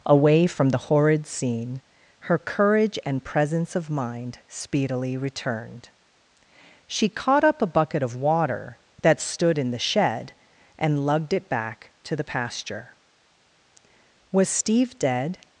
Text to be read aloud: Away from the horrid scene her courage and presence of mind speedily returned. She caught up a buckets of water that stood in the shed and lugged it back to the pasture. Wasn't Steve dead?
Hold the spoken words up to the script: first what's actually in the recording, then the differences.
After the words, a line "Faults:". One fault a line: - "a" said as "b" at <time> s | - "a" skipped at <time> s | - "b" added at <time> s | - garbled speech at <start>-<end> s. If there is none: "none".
Away from the horrid scene her courage and presence of mind speedily returned. She caught up a bucket of water that stood in the shed and lugged it back to the pasture. Was Steve dead?
Faults:
- "buckets" said as "bucket" at 7.7 s
- "Wasn't" said as "Was" at 14.3 s